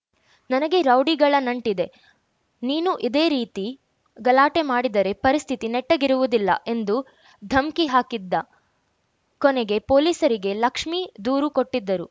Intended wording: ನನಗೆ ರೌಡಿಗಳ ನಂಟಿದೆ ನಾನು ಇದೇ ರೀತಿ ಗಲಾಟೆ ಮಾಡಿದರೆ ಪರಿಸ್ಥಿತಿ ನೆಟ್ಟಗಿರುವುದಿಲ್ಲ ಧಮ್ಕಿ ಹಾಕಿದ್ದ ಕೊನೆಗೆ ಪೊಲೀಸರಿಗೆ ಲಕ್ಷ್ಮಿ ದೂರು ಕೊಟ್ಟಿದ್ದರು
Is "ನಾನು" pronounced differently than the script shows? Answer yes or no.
yes